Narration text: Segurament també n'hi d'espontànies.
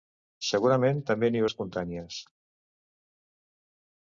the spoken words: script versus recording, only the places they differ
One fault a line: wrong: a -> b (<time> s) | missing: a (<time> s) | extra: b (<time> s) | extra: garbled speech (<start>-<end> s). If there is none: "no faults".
no faults